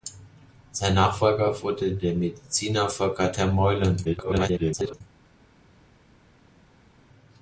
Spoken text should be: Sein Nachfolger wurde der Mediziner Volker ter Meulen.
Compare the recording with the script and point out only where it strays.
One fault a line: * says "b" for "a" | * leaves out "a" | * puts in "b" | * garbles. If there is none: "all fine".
* garbles